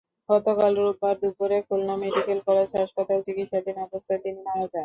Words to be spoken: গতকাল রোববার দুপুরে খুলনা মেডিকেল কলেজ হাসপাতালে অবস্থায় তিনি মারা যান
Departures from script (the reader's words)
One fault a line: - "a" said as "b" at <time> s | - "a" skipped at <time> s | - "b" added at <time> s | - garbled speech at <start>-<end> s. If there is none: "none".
- "চিকিৎসাধীন" added at 3.3 s